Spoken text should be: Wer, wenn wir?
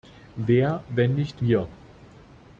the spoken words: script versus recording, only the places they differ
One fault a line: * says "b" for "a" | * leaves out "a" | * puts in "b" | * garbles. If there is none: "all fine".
* puts in "nicht"